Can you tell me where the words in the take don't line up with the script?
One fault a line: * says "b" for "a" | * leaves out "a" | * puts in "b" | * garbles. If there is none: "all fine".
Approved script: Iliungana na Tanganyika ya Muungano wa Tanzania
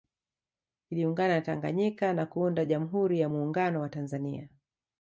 * puts in "na kuunda Jamhuri"